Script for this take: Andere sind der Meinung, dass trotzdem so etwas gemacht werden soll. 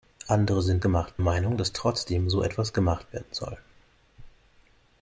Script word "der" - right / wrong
wrong